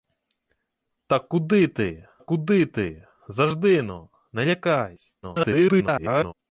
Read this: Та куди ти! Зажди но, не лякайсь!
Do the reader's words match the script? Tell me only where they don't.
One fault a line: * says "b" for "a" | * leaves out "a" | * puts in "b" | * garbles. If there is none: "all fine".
* puts in "куди ти"
* garbles